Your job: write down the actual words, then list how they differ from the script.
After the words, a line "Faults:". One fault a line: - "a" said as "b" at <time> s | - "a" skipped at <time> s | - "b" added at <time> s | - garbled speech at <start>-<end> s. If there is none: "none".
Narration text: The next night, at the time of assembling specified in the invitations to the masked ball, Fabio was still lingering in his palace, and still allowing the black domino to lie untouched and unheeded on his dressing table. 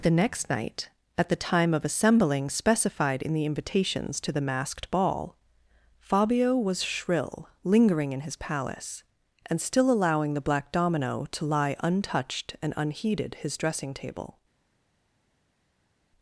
The next night, at the time of assembling specified in the invitations to the masked ball, Fabio was shrill lingering in his palace, and still allowing the black domino to lie untouched and unheeded his dressing table.
Faults:
- "still" said as "shrill" at 6.8 s
- "on" skipped at 13.3 s